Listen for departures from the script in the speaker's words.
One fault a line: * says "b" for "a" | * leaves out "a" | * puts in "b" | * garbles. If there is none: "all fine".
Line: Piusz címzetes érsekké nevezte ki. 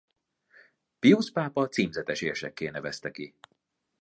* puts in "pápa"